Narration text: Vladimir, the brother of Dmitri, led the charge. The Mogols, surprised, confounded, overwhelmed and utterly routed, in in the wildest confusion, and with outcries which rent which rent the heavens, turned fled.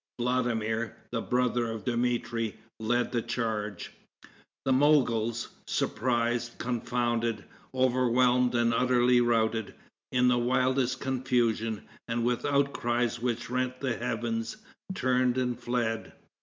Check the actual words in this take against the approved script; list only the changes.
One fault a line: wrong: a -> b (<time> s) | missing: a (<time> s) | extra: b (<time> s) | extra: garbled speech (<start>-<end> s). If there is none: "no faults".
missing: in (10.3 s)
missing: which rent (13.8 s)
extra: and (15.4 s)